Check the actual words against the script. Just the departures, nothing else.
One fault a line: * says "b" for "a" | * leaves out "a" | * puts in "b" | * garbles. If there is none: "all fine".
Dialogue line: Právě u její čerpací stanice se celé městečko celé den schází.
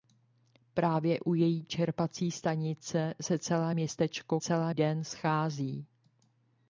all fine